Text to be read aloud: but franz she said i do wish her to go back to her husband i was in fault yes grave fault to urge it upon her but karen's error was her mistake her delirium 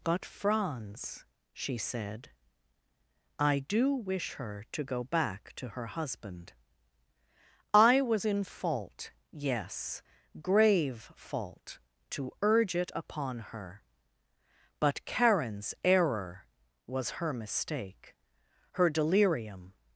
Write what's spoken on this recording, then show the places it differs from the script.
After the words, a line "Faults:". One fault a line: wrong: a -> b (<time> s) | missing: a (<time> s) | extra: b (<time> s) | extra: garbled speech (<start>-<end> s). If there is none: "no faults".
but franz she said i do wish her to go back to her husband i was in fault yes grave fault to urge it upon her but karen's error was her mistake her delirium
Faults:
no faults